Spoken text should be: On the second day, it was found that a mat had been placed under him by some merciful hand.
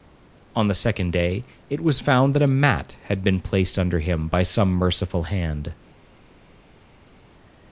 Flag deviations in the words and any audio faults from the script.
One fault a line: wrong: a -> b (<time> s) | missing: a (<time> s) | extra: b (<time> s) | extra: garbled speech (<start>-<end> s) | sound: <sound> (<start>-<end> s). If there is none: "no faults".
no faults